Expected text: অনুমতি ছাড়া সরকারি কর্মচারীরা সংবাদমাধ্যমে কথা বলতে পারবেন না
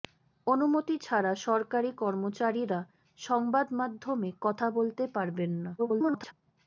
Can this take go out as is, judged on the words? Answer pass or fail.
fail